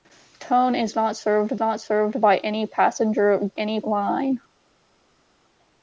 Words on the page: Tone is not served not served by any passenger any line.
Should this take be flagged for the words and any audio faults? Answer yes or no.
no